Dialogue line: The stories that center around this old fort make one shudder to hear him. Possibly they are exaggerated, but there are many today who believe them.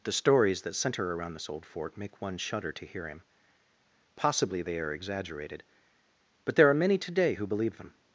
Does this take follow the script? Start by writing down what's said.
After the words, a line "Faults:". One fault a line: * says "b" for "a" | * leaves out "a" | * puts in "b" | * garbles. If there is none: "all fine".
The stories that center around this old fort make one shudder to hear him. Possibly they are exaggerated, but there are many today who believe them.
Faults:
all fine